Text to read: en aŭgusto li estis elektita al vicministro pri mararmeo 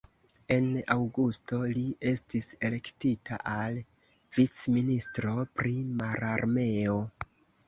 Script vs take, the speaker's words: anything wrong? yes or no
no